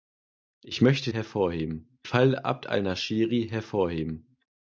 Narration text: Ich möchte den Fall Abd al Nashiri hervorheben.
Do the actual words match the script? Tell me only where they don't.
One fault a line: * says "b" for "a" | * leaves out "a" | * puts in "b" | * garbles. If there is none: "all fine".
* says "hervorheben" for "den"